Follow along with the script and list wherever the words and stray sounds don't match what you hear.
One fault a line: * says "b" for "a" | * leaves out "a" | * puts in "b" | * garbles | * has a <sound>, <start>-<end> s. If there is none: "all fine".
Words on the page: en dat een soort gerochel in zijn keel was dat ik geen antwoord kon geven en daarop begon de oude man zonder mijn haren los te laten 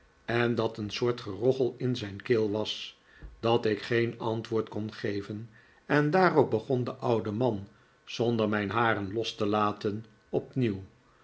all fine